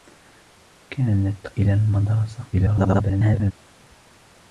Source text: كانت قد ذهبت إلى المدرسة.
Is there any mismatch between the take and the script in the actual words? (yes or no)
yes